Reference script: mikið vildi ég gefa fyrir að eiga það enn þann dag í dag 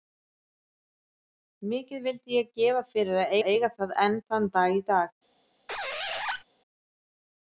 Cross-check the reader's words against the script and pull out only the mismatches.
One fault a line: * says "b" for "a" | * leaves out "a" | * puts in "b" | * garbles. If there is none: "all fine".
* puts in "að"